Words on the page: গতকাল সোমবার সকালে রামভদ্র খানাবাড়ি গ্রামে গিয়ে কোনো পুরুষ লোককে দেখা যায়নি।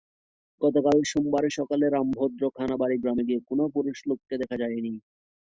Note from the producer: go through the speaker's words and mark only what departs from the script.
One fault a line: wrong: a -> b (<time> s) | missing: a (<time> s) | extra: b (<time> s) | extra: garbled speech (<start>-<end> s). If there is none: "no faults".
no faults